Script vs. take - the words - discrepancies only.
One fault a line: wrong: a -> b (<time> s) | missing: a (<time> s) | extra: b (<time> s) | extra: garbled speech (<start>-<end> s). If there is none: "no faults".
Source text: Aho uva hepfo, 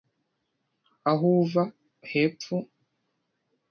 no faults